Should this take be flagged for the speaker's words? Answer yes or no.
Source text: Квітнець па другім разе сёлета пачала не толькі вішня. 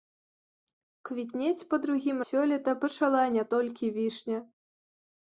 yes